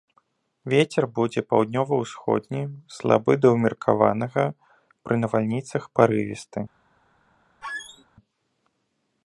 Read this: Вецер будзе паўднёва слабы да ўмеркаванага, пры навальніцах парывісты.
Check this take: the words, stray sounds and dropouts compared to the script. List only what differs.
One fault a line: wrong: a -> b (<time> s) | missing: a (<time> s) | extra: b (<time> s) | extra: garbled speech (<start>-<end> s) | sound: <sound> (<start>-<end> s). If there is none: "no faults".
extra: ўсходні (2.0 s)
sound: squeak (7.6-8.1 s)